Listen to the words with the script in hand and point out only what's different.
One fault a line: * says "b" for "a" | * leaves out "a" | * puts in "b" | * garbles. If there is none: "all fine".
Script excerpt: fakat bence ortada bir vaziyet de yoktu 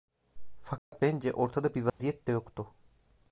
all fine